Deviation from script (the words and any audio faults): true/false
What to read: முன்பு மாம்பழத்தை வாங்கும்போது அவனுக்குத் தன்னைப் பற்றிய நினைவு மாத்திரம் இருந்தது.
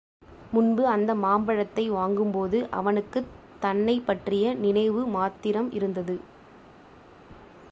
true